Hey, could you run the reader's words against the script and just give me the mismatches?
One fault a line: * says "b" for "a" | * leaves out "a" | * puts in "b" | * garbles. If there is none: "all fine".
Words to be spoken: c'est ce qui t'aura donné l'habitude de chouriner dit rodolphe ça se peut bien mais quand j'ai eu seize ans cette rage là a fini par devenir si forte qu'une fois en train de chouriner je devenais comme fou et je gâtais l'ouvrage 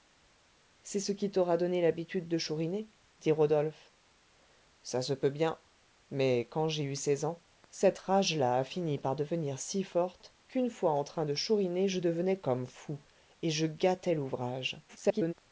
* garbles